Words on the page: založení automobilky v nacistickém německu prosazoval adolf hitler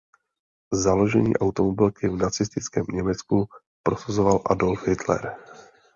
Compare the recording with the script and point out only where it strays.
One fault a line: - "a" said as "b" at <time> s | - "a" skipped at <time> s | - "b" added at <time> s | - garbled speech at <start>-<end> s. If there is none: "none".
none